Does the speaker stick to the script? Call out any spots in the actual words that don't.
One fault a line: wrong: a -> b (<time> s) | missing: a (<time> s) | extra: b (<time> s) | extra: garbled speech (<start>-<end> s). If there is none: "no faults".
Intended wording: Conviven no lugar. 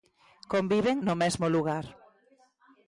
extra: mesmo (1.2 s)